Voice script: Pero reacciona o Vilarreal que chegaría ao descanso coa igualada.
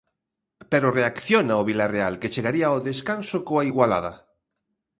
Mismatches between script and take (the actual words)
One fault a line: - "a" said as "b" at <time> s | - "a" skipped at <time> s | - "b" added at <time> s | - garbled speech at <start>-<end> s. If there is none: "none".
none